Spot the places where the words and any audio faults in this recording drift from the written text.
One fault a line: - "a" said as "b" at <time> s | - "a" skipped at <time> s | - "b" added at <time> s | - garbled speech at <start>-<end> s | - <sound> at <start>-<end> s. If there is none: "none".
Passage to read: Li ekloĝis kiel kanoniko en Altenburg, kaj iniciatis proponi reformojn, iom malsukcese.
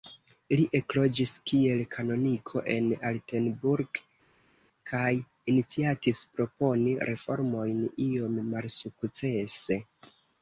none